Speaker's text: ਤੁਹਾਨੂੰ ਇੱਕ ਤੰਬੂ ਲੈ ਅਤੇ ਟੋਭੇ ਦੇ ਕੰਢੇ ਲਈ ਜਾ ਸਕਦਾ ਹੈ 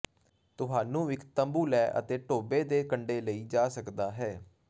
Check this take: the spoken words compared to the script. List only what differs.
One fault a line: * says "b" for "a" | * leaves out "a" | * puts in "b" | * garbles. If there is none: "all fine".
all fine